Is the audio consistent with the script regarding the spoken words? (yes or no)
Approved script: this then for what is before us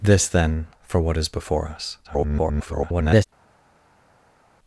no